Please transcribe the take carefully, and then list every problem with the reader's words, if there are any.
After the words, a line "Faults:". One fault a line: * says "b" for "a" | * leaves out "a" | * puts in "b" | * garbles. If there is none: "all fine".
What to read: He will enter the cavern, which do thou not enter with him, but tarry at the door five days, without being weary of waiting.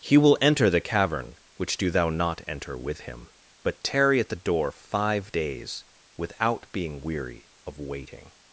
He will enter the cavern, which do thou not enter with him, but tarry at the door five days, without being weary of waiting.
Faults:
all fine